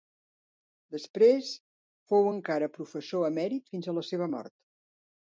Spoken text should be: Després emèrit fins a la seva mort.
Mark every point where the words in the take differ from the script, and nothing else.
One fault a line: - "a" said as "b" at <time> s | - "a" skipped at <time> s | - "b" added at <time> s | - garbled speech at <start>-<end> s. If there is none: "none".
- "fou encara professor" added at 2.1 s